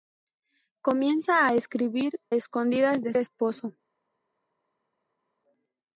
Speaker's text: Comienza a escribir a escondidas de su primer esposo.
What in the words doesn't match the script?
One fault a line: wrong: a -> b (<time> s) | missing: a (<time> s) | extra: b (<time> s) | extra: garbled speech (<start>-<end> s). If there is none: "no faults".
missing: a (2.2 s)
missing: su primer (3.1 s)